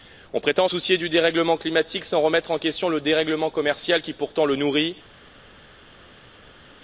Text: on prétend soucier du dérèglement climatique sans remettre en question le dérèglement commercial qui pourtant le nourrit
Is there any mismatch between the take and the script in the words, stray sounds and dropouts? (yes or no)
no